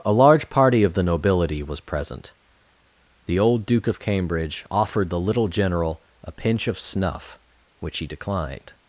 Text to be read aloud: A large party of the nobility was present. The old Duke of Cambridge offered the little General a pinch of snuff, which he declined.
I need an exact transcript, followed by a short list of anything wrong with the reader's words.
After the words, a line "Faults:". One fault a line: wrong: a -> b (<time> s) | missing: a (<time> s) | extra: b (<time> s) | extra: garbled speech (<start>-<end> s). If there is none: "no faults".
A large party of the nobility was present. The old Duke of Cambridge offered the little General a pinch of snuff, which he declined.
Faults:
no faults